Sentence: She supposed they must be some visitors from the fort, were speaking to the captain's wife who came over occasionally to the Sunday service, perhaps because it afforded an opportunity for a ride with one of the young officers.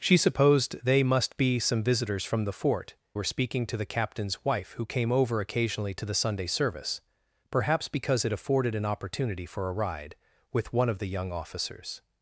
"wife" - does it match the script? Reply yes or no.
yes